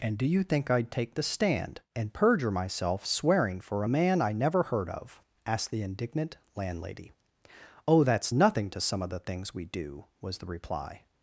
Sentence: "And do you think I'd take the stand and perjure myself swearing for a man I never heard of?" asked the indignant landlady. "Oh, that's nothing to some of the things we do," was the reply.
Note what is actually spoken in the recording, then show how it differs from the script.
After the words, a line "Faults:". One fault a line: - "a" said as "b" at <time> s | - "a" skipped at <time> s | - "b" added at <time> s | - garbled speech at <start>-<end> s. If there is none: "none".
"And do you think I'd take the stand and perjure myself swearing for a man I never heard of?" asked the indignant landlady. "Oh, that's nothing to some of the things we do," was the reply.
Faults:
none